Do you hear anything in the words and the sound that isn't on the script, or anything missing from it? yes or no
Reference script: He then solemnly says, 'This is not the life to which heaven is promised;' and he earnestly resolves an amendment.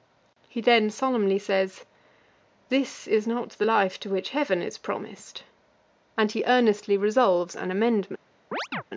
yes